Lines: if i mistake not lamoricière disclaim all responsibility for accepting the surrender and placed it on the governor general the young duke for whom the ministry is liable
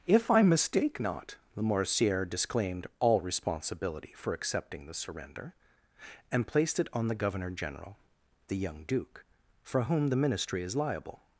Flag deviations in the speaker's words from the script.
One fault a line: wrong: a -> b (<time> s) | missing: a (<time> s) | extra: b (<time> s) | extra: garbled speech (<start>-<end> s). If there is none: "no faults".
wrong: disclaim -> disclaimed (2.3 s)